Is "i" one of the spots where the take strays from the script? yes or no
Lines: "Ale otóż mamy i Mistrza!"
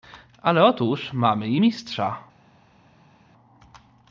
no